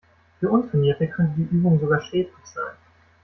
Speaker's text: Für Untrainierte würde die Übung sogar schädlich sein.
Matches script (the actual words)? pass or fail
fail